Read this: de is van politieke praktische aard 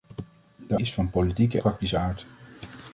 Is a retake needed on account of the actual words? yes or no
no